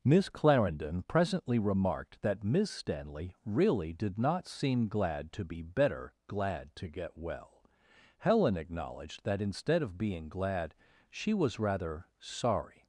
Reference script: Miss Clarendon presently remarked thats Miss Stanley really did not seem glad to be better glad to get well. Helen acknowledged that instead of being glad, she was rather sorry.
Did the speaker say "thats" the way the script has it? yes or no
no